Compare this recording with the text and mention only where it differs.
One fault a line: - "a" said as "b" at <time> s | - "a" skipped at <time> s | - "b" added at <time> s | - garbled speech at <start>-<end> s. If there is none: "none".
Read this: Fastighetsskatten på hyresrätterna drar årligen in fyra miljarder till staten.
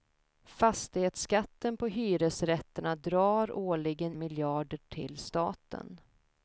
- "in fyra" skipped at 4.2 s